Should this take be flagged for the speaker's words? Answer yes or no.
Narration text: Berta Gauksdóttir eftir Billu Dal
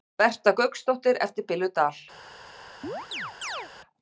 no